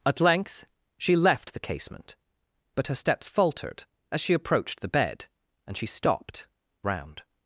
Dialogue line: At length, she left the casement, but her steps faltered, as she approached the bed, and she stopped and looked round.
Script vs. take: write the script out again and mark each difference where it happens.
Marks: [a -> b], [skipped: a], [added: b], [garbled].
At length, she left the casement, but her steps faltered, as she approached the bed, and she stopped [skipped: and looked] round.